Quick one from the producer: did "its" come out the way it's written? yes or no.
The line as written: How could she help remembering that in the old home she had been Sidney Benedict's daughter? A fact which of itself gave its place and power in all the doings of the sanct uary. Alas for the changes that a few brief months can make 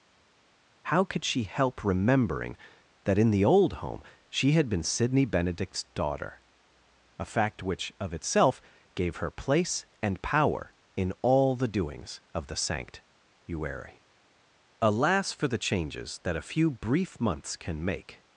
no